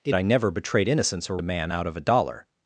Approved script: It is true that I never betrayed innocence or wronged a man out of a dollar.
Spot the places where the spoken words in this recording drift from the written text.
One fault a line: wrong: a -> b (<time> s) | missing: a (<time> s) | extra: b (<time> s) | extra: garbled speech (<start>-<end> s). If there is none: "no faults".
missing: is true that (0.1 s)
missing: wronged (1.4 s)